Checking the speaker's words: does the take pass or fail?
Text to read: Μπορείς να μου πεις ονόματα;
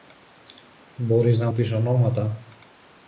fail